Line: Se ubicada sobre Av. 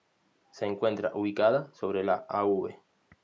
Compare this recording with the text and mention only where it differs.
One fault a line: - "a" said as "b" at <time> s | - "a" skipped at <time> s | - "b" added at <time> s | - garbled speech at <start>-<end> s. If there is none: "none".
- "encuentra" added at 0.7 s
- "la" added at 2.0 s